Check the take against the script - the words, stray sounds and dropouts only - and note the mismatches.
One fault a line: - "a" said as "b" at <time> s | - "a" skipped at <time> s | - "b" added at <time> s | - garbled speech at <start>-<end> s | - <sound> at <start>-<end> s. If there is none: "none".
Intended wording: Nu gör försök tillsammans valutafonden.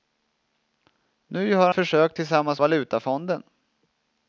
none